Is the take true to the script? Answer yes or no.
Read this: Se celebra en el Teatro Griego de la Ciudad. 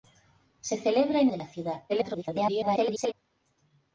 no